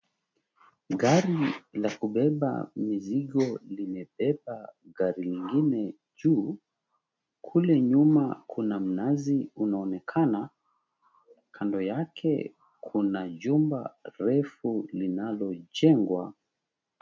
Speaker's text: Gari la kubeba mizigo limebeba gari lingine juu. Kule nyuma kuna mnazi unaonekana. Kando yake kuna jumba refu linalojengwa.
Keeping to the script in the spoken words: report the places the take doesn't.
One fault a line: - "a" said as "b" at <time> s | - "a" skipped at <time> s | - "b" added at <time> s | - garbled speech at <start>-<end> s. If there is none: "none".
none